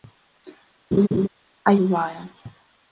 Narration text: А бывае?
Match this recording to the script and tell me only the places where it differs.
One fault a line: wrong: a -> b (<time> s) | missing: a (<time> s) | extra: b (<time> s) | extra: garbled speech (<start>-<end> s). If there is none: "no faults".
no faults